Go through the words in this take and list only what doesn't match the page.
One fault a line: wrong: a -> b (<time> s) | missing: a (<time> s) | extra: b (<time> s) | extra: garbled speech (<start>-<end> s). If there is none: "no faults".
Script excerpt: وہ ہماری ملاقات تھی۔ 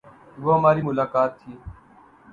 no faults